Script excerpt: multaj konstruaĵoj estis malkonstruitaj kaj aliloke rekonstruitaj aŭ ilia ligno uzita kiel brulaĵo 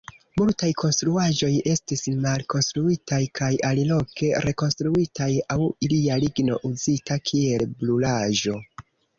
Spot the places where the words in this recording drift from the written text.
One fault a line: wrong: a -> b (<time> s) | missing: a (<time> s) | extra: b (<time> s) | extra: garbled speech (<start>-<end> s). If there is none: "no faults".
no faults